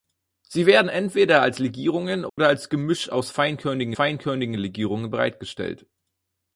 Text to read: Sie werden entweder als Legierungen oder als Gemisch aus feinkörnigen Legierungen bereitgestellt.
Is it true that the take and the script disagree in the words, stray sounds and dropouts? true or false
true